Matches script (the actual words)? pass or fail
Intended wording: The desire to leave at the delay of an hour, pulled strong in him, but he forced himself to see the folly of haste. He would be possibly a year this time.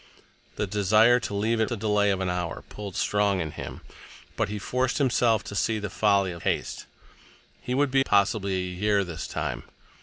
pass